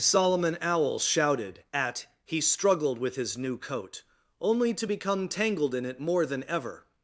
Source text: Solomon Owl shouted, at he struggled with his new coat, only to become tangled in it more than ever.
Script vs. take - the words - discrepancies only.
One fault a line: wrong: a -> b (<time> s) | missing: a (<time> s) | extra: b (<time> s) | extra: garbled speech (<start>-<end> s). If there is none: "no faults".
no faults